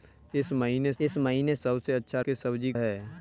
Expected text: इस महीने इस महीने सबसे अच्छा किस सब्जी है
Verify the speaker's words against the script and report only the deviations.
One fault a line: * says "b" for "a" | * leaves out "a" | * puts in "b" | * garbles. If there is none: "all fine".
all fine